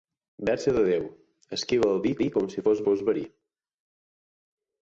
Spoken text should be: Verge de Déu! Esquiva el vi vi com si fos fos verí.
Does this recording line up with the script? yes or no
yes